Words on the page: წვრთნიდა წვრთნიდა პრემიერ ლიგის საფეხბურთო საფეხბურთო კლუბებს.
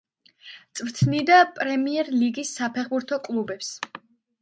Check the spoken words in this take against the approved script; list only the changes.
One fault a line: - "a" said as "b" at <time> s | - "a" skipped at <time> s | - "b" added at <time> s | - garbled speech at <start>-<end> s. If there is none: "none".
- "წვრთნიდა" skipped at 1.4 s
- "საფეხბურთო" skipped at 3.2 s